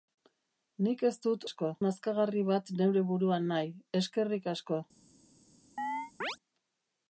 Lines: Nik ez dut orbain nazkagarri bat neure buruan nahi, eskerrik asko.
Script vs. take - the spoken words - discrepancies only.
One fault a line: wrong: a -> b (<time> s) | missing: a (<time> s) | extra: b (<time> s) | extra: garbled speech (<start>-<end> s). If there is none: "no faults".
wrong: orbain -> asko (1.5 s)